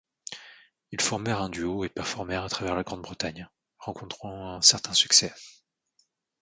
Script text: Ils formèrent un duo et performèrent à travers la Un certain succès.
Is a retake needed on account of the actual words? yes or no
yes